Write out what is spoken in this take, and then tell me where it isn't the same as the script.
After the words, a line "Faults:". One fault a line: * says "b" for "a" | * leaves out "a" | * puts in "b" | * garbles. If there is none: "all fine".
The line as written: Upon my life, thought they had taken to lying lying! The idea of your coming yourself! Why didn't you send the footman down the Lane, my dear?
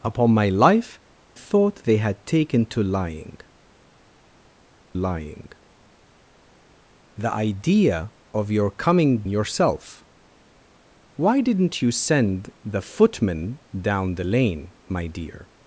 Upon my life, thought they had taken to lying lying! The idea of your coming yourself! Why didn't you send the footman down the Lane, my dear?
Faults:
all fine